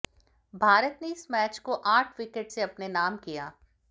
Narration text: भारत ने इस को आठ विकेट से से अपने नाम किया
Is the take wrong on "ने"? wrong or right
right